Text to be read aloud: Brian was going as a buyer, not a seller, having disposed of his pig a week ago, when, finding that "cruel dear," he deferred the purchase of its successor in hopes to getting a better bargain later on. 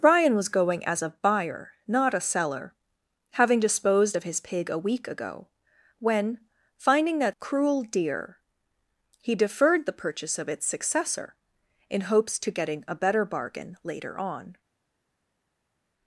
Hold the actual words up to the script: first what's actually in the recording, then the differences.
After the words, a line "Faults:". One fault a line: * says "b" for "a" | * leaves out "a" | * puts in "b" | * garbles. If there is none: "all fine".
Brian was going as a buyer, not a seller, having disposed of his pig a week ago, when, finding that "cruel dear," he deferred the purchase of its successor in hopes to getting a better bargain later on.
Faults:
all fine